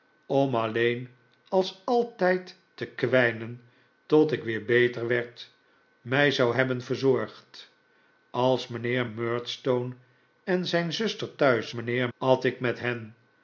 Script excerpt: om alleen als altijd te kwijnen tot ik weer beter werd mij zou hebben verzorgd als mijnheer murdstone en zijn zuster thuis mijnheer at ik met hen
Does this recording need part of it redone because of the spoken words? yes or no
no